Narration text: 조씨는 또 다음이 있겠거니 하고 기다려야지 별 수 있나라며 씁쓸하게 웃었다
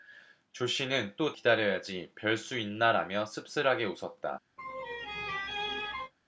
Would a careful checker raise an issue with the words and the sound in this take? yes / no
yes